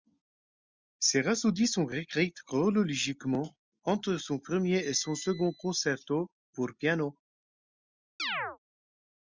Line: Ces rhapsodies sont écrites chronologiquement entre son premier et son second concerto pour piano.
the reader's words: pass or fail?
pass